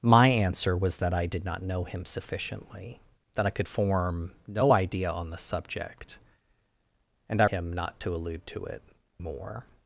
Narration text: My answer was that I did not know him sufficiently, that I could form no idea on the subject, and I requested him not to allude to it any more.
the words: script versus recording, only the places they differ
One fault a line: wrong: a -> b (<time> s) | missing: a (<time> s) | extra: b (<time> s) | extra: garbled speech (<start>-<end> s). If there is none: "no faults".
missing: requested (7.5 s)
missing: any (8.8 s)